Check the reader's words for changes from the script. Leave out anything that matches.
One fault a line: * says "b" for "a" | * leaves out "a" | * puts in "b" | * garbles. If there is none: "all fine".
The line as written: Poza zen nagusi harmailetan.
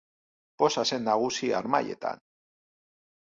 all fine